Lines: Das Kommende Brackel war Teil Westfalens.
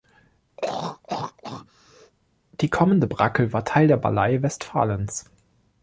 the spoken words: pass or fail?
fail